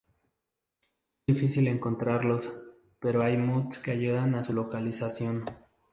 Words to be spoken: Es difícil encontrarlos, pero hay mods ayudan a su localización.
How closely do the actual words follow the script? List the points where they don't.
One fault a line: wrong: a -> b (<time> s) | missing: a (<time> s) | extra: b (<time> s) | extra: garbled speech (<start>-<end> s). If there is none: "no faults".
extra: que (3.8 s)